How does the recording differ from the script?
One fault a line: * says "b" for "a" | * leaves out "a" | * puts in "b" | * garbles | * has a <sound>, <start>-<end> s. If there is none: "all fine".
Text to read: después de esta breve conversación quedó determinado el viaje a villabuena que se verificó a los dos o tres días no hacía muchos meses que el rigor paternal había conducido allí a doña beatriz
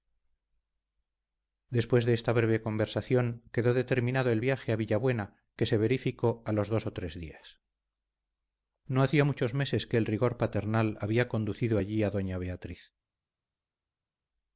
all fine